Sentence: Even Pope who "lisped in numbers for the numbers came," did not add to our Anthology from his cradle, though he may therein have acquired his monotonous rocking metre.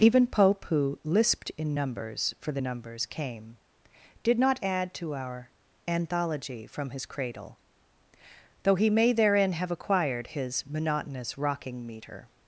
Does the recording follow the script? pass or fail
pass